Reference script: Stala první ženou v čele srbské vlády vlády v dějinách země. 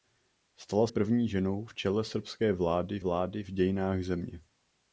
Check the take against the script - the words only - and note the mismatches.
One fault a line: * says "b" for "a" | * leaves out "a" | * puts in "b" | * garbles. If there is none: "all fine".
all fine